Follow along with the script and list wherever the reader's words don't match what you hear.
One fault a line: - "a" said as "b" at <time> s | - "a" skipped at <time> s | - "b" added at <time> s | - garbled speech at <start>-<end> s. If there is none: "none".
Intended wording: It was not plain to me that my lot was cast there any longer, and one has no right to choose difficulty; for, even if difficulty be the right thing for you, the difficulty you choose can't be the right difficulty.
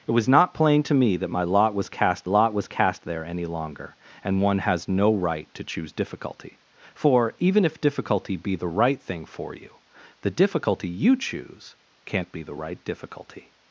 - "lot was cast" added at 2.2 s